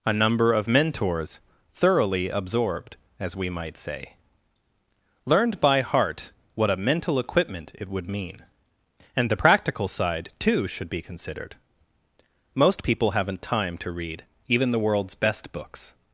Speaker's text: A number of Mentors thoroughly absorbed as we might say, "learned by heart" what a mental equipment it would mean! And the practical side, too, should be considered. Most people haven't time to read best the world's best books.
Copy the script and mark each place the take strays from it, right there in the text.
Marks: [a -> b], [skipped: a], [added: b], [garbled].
A number of Mentors thoroughly absorbed as we might say, "learned by heart" what a mental equipment it would mean! And the practical side, too, should be considered. Most people haven't time to read [best -> even] the world's best books.